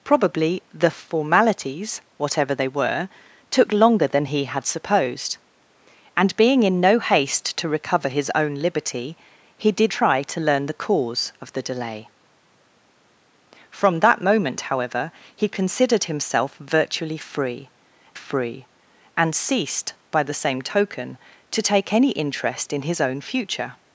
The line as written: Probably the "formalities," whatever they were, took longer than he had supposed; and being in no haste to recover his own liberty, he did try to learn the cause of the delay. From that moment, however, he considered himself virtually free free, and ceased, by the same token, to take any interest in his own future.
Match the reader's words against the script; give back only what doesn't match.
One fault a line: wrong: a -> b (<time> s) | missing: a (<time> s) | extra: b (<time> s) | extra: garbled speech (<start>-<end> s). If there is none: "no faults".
no faults